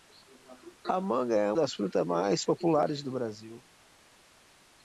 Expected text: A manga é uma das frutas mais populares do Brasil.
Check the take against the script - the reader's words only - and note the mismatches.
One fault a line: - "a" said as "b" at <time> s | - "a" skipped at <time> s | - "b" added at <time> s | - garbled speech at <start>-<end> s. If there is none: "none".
- "uma" skipped at 1.5 s